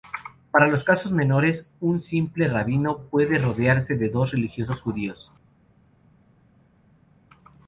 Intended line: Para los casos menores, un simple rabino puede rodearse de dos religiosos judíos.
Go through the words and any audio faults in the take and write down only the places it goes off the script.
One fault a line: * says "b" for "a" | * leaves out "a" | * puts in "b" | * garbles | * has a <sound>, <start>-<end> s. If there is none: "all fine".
all fine